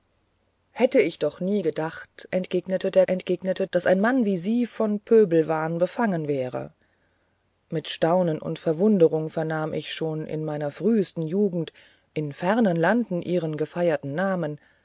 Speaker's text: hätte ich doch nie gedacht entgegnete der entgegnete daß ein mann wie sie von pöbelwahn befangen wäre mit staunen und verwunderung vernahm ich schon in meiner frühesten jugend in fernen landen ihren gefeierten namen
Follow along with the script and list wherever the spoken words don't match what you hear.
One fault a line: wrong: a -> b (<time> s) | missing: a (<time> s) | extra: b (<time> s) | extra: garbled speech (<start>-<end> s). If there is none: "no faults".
no faults